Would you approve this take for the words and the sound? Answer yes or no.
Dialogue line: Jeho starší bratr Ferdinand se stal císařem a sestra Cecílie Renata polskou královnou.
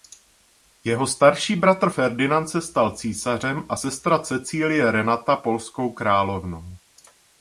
yes